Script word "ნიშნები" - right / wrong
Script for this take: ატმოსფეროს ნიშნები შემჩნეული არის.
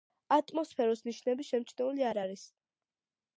right